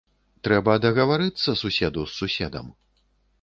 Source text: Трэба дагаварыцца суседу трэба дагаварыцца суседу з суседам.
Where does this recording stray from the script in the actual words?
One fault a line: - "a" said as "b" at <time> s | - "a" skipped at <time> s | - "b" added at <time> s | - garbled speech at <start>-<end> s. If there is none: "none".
- "трэба дагаварыцца суседу" skipped at 2.1 s